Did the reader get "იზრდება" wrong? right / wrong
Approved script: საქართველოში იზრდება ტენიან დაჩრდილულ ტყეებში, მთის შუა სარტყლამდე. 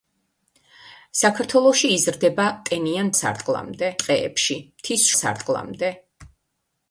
right